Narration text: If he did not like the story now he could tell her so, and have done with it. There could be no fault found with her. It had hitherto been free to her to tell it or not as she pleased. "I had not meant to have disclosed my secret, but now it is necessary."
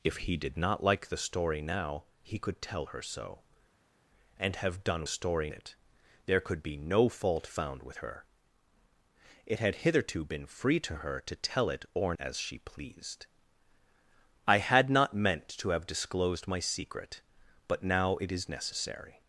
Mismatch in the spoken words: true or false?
true